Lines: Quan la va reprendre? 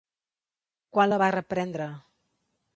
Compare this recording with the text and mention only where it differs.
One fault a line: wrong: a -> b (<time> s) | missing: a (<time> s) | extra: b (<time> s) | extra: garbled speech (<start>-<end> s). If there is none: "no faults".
no faults